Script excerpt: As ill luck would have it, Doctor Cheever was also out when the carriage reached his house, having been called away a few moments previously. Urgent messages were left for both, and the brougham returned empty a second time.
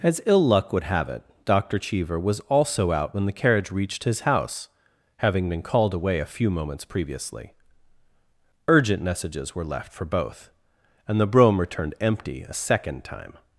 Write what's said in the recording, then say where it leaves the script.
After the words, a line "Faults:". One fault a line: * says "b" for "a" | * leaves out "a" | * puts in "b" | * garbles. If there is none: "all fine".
As ill luck would have it, Doctor Cheever was also out when the carriage reached his house, having been called away a few moments previously. Urgent messages were left for both, and the brougham returned empty a second time.
Faults:
all fine